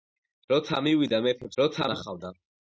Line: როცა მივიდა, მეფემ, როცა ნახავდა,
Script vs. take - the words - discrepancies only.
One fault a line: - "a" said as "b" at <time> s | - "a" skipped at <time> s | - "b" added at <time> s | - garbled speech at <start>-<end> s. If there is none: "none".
none